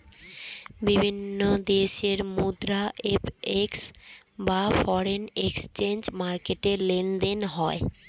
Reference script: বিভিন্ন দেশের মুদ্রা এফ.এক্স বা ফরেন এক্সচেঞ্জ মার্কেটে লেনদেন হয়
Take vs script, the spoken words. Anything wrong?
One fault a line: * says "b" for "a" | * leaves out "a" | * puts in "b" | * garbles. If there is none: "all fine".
all fine